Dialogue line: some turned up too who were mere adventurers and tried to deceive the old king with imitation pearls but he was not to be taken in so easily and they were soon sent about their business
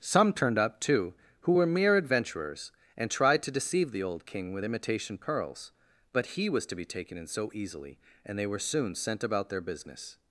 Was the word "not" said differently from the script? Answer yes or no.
yes